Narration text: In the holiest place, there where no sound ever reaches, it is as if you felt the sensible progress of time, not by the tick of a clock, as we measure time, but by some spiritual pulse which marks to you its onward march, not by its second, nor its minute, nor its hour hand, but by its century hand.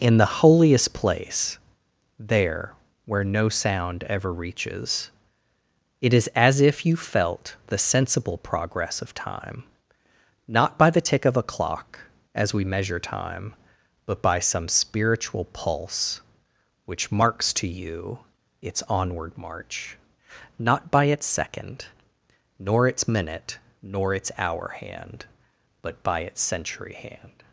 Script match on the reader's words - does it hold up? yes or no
yes